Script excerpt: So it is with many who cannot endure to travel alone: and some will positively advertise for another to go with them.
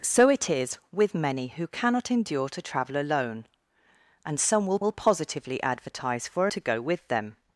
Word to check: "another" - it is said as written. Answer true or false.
false